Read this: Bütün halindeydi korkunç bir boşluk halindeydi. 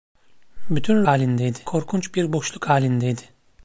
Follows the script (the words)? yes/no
yes